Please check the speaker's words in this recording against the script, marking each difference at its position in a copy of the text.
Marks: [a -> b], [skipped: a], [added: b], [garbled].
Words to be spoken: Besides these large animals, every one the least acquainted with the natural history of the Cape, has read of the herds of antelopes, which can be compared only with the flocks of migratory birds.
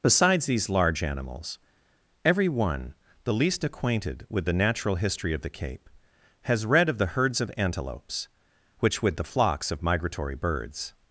Besides these large animals, every one the least acquainted with the natural history of the Cape, has read of the herds of antelopes, which [skipped: can be compared only] with the flocks of migratory birds.